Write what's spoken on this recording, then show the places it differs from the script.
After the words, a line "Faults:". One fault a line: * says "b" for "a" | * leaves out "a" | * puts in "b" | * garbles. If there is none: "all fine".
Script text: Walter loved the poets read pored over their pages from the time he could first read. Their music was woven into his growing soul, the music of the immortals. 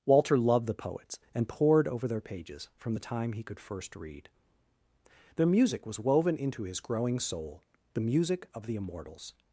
Walter loved the poets and pored over their pages from the time he could first read. Their music was woven into his growing soul, the music of the immortals.
Faults:
* says "and" for "read"